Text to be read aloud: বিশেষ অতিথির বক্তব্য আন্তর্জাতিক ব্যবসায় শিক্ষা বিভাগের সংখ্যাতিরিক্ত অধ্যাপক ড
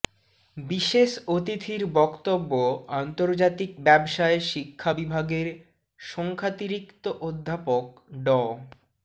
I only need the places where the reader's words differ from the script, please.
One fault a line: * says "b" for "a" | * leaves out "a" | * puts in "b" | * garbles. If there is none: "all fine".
all fine